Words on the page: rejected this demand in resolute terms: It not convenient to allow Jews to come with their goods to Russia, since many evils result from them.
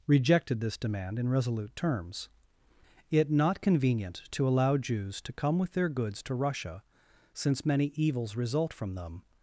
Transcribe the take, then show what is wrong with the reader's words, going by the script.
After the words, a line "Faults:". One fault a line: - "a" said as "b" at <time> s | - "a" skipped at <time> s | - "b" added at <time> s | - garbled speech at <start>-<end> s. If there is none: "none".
rejected this demand in resolute terms: It not convenient to allow Jews to come with their goods to Russia, since many evils result from them.
Faults:
none